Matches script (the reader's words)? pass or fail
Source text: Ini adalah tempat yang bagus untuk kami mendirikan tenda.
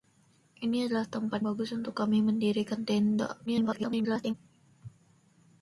fail